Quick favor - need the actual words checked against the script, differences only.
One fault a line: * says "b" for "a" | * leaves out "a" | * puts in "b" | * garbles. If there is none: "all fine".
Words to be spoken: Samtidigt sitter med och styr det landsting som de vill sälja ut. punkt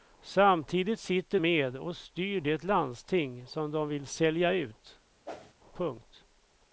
all fine